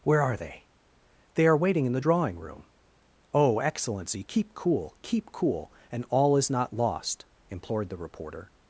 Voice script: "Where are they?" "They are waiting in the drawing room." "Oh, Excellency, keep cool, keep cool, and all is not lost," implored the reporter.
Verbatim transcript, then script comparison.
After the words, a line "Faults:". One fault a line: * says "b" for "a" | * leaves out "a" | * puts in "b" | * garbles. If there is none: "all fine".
"Where are they?" "They are waiting in the drawing room." "Oh, Excellency, keep cool, keep cool, and all is not lost," implored the reporter.
Faults:
all fine